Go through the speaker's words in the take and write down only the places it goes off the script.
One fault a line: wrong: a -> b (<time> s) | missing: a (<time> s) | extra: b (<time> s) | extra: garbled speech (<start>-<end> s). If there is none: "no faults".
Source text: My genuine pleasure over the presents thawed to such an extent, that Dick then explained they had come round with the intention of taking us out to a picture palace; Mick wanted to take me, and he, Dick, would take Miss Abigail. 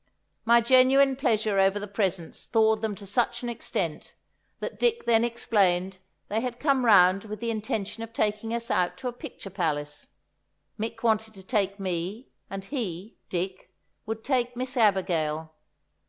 extra: them (2.8 s)